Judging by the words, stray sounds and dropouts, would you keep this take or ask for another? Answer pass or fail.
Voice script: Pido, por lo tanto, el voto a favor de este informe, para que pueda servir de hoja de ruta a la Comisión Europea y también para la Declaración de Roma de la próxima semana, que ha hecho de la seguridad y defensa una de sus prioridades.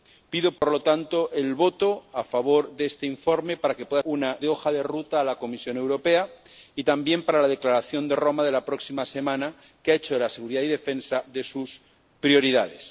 fail